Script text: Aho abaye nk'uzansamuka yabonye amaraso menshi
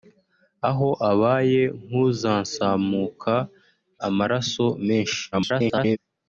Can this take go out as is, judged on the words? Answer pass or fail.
fail